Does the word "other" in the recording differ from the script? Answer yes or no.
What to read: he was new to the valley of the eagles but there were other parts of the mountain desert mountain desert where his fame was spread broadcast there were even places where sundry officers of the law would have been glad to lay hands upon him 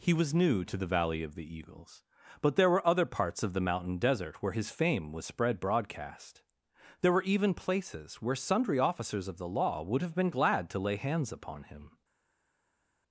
no